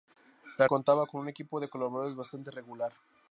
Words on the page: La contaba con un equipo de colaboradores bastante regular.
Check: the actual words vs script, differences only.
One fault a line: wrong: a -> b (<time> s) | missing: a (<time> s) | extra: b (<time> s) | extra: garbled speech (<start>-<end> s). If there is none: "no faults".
no faults